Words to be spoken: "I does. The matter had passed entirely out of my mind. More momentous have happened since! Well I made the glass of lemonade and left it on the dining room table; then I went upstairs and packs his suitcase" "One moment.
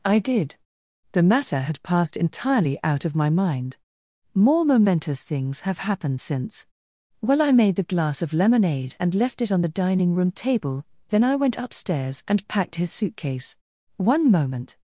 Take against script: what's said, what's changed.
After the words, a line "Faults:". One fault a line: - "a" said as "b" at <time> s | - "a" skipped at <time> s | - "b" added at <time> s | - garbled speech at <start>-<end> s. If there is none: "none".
"I did. The matter had passed entirely out of my mind. More momentous things have happened since! Well I made the glass of lemonade and left it on the dining room table; then I went upstairs and packed his suitcase" "One moment.
Faults:
- "does" said as "did" at 0.2 s
- "things" added at 5.2 s
- "packs" said as "packed" at 12.5 s